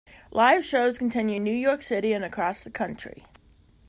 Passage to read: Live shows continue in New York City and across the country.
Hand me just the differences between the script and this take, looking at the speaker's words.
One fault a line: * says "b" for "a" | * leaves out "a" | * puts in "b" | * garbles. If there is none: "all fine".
all fine